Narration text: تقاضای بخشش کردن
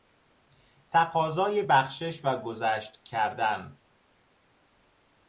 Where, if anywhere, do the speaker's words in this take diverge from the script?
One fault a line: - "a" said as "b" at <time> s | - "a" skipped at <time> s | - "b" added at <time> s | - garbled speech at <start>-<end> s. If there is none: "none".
- "و گذشت" added at 2.2 s